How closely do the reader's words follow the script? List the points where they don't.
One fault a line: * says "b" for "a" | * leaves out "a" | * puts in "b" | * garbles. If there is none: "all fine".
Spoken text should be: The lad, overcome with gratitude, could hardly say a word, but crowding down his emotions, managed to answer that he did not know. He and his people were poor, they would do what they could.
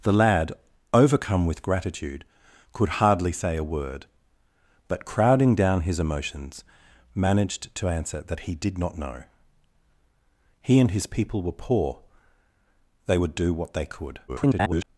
* garbles